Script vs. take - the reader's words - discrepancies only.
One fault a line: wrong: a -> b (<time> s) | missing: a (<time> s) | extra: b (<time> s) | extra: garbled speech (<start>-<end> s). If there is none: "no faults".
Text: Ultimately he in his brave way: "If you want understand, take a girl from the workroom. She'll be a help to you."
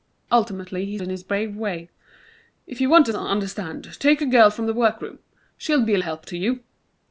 no faults